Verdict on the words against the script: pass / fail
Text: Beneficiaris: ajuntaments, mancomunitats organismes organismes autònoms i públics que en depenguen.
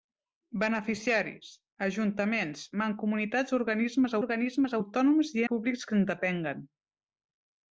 pass